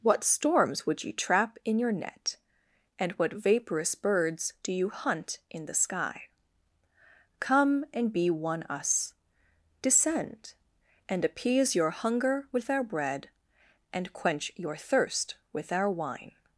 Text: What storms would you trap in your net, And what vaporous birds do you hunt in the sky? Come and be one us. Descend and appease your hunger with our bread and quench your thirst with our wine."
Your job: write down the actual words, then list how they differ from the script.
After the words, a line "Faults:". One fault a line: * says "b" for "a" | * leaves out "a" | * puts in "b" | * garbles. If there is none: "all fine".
What storms would you trap in your net, And what vaporous birds do you hunt in the sky? Come and be one us. Descend and appease your hunger with our bread and quench your thirst with our wine."
Faults:
all fine